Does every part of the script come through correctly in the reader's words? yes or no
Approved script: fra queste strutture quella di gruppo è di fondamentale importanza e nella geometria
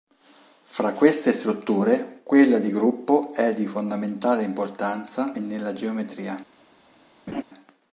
yes